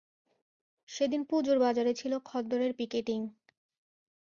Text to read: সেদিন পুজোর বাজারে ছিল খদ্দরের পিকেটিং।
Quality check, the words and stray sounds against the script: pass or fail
pass